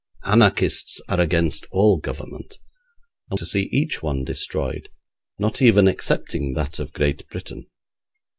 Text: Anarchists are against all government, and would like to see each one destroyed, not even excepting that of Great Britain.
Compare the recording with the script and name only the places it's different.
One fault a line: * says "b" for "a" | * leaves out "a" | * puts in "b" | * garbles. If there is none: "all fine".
* leaves out "would like"